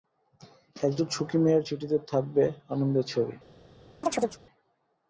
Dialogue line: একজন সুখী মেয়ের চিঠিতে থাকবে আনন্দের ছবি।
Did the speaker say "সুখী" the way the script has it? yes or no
yes